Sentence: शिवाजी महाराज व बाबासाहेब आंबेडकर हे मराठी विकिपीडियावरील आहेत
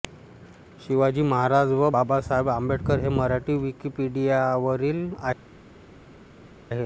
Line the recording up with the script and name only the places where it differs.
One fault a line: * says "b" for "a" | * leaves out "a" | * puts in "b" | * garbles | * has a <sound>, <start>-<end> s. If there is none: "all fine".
all fine